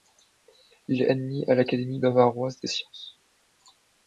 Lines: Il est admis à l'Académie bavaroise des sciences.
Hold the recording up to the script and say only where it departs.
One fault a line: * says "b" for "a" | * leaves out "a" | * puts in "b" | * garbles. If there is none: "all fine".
all fine